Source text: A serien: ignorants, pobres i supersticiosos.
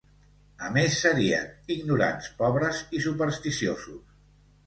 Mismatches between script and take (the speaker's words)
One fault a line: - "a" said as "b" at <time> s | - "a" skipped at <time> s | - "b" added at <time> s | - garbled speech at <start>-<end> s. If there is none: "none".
- "més" added at 0.8 s